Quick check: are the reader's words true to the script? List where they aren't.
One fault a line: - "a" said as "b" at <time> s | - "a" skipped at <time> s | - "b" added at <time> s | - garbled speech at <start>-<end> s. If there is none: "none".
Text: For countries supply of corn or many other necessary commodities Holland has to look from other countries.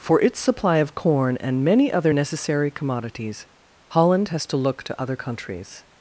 - "countries" said as "its" at 0.2 s
- "or" said as "and" at 1.4 s
- "from" said as "to" at 4.8 s